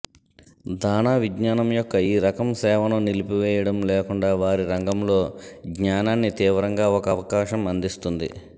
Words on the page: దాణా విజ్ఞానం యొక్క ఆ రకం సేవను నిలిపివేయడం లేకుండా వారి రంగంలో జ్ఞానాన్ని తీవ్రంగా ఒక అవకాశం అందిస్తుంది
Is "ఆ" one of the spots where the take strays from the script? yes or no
yes